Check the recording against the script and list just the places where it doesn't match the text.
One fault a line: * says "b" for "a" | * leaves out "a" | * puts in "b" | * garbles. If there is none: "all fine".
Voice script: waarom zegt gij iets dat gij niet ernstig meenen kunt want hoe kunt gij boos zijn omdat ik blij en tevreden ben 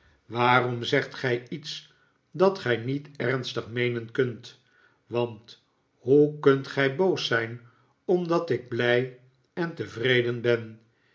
all fine